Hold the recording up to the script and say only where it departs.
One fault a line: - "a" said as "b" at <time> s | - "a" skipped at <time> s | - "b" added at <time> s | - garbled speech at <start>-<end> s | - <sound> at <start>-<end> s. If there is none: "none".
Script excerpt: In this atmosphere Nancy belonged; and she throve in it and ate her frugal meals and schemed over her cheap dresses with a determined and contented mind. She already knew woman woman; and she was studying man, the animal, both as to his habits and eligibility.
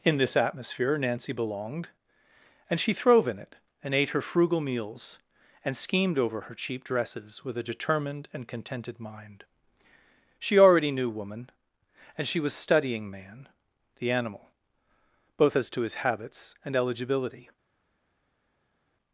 - "woman" skipped at 11.5 s